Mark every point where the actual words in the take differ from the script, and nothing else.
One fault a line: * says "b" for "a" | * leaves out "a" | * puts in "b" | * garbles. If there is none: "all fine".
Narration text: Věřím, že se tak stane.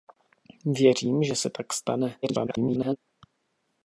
* garbles